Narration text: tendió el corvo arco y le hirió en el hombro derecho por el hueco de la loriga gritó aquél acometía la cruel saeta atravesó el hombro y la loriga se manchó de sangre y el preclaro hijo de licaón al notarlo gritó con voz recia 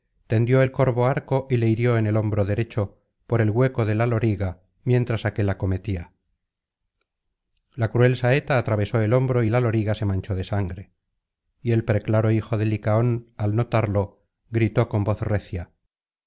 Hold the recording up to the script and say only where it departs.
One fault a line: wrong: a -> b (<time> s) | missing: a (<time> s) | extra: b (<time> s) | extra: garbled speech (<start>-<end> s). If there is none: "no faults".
wrong: gritó -> mientras (4.8 s)